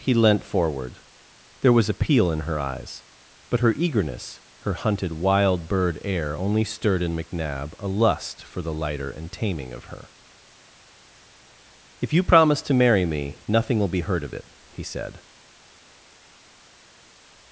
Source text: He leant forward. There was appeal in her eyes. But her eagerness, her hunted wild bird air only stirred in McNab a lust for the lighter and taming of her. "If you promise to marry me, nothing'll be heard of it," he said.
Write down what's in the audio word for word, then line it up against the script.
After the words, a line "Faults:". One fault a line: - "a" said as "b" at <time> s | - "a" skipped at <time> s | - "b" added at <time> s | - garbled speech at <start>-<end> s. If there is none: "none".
He leant forward. There was appeal in her eyes. But her eagerness, her hunted wild bird air only stirred in McNab a lust for the lighter and taming of her. "If you promise to marry me, nothing'll be heard of it," he said.
Faults:
none